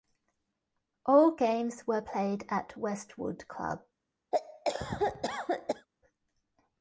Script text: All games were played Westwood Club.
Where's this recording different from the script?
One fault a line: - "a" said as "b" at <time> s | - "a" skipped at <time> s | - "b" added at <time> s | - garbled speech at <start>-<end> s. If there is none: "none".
- "at" added at 2.5 s